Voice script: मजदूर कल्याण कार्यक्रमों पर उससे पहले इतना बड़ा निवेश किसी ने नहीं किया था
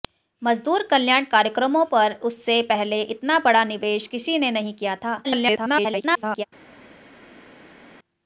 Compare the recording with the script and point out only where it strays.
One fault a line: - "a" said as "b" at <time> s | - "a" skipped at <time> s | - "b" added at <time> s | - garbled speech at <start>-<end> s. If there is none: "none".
- garbled speech at 5.2-6.4 s